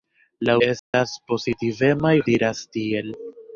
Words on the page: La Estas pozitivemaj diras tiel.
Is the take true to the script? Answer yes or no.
yes